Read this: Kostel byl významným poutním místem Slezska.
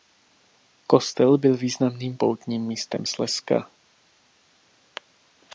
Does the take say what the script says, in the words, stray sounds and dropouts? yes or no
yes